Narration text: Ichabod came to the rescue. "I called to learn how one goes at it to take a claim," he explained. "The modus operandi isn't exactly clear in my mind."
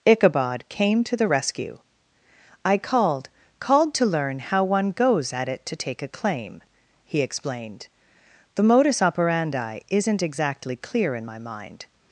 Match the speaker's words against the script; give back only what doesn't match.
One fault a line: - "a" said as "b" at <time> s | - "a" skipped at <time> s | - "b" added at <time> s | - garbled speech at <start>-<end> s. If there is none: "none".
- "called" added at 3.6 s